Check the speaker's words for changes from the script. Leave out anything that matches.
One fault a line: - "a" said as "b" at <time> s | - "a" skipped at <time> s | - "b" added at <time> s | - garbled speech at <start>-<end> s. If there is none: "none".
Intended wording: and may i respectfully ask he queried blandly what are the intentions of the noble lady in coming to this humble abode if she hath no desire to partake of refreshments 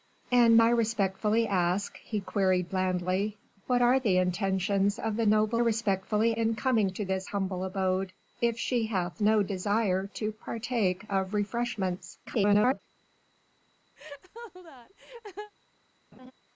- "may" skipped at 0.6 s
- "lady" said as "respectfully" at 5.6 s
- garbled speech at 12.3-12.8 s